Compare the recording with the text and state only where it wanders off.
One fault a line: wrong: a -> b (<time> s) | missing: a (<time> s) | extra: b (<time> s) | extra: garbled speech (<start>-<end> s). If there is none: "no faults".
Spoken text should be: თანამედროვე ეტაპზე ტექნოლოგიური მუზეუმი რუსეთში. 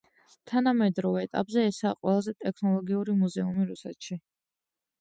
extra: ესაა ყველაზე (1.7 s)